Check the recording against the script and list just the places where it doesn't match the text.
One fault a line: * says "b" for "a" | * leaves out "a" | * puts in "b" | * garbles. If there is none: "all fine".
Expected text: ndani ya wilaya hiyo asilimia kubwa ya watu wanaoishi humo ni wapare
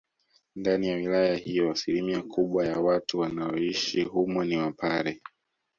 all fine